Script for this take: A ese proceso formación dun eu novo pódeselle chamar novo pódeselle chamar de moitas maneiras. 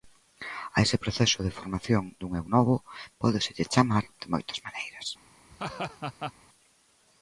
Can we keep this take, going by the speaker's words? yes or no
no